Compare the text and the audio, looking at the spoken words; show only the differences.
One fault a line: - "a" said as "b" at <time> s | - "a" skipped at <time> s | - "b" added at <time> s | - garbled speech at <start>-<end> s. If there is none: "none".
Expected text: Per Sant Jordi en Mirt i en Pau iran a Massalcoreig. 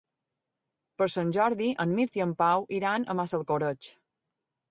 none